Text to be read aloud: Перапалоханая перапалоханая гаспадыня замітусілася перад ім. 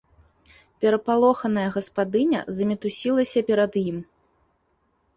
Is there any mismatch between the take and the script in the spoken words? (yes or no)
yes